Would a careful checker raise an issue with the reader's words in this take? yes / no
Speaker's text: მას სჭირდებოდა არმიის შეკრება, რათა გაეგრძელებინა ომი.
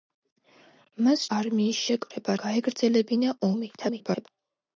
yes